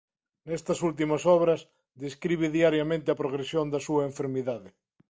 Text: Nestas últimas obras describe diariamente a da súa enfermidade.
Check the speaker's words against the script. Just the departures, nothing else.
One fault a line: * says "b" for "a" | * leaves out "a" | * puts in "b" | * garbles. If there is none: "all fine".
* puts in "progresión"